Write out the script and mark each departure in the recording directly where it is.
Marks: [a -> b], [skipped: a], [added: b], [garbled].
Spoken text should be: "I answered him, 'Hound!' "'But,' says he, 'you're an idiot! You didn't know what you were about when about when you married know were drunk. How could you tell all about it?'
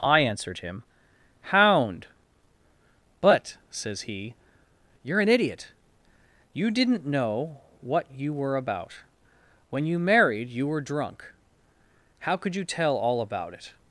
"I answered him, 'Hound!' "'But,' says he, 'you're an idiot! You didn't know what you were about when [skipped: about when] you married [know -> you] were drunk. How could you tell all about it?'